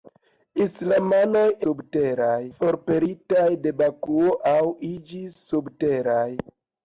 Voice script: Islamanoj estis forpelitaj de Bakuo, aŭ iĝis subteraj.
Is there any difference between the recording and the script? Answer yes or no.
yes